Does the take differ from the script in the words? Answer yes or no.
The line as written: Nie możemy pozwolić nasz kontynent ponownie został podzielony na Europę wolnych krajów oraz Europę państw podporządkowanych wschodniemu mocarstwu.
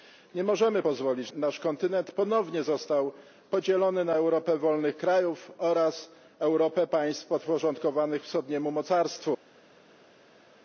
no